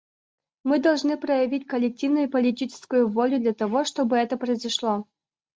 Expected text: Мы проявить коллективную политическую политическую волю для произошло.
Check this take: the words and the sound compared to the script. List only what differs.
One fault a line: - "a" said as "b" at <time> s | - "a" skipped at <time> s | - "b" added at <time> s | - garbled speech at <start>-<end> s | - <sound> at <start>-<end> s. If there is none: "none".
- "должны" added at 0.8 s
- "политическую" skipped at 3.1 s
- "того чтобы это" added at 3.5 s